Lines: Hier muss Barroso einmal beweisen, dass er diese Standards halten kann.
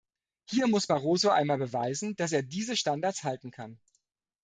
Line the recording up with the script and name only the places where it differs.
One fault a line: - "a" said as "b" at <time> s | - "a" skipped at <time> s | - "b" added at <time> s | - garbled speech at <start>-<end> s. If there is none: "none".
none